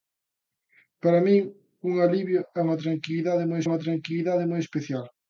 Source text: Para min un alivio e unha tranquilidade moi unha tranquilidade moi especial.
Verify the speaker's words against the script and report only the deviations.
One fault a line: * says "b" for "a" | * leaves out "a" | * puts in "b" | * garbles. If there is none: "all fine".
all fine